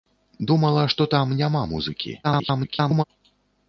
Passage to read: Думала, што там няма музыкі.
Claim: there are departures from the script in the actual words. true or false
true